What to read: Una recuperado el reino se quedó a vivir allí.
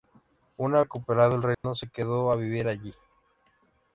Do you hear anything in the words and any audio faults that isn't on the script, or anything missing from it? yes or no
yes